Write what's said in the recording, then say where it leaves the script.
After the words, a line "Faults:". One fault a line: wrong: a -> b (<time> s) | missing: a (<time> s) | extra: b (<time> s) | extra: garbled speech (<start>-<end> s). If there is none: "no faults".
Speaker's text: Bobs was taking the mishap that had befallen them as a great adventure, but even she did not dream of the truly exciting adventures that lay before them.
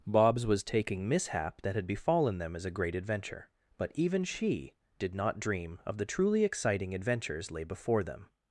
Bobs was taking mishap that had befallen them as a great adventure, but even she did not dream of the truly exciting adventures lay before them.
Faults:
missing: the (1.1 s)
missing: that (7.5 s)